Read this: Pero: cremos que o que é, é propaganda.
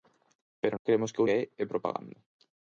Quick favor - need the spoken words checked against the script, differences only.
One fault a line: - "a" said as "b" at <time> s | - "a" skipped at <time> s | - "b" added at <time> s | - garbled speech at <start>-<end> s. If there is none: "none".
none